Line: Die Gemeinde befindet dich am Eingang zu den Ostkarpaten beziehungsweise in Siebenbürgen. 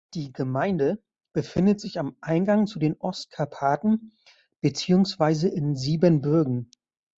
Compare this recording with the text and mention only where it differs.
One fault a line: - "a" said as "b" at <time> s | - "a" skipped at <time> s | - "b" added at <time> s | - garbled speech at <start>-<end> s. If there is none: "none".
- "dich" said as "sich" at 1.8 s